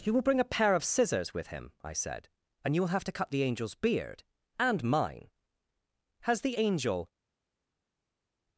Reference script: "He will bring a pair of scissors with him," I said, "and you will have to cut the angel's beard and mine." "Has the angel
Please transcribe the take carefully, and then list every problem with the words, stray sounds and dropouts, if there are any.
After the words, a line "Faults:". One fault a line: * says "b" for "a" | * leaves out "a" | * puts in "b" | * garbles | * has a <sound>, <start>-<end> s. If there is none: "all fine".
"He will bring a pair of scissors with him," I said, "and you will have to cut the angel's beard and mine." "Has the angel
Faults:
all fine